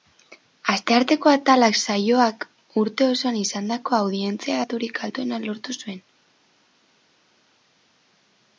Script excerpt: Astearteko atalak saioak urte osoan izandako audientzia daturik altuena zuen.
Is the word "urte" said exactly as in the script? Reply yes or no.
yes